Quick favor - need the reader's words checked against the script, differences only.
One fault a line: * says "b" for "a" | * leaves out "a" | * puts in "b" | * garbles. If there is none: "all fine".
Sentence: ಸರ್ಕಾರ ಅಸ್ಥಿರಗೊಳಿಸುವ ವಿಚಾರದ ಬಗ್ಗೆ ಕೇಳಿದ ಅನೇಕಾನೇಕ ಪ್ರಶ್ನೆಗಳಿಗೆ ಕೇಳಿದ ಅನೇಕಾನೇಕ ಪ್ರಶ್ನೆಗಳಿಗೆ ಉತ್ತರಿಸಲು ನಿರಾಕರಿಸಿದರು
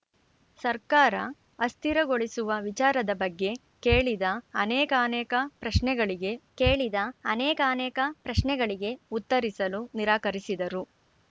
all fine